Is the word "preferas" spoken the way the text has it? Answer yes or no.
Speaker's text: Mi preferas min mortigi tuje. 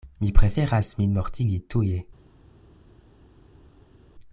yes